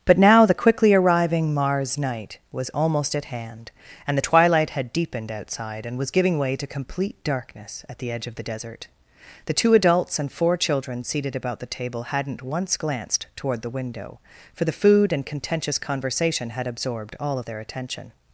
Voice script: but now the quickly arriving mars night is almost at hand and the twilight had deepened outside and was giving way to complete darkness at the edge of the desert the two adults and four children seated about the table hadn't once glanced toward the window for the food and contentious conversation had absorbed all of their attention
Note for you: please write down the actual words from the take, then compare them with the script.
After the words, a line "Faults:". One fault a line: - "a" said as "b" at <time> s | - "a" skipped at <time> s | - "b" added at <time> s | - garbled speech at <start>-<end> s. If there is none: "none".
but now the quickly arriving mars night was almost at hand and the twilight had deepened outside and was giving way to complete darkness at the edge of the desert the two adults and four children seated about the table hadn't once glanced toward the window for the food and contentious conversation had absorbed all of their attention
Faults:
- "is" said as "was" at 2.5 s